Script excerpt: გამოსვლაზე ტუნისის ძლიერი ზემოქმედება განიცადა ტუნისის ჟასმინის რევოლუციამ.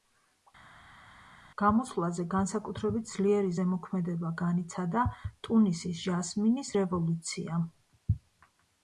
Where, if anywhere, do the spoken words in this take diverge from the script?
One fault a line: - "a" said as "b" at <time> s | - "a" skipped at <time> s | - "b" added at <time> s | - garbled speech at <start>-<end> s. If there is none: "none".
- "ტუნისის" said as "განსაკუთრებით" at 2.3 s